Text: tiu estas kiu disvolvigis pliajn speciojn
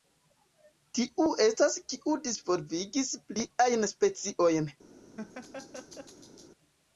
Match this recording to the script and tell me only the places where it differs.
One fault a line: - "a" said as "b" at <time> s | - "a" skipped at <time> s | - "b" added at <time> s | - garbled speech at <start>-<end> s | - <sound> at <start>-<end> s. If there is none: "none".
- laugh at 5.2-6.5 s